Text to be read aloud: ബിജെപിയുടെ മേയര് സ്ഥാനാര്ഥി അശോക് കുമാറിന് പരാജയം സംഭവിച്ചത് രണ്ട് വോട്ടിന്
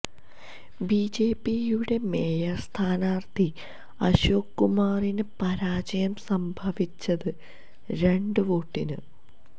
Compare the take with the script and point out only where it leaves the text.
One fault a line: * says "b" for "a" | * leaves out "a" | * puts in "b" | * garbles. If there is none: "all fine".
all fine